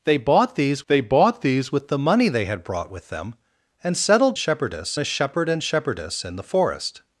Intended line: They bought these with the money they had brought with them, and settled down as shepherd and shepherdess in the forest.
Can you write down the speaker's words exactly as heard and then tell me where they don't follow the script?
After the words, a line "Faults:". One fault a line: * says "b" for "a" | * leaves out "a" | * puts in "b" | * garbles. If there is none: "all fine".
They bought these they bought these with the money they had brought with them, and settled shepherdess as shepherd and shepherdess in the forest.
Faults:
* puts in "they bought these"
* says "shepherdess" for "down"